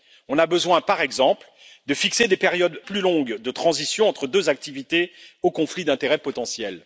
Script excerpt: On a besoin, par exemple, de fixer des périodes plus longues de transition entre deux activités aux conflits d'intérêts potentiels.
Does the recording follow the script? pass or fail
pass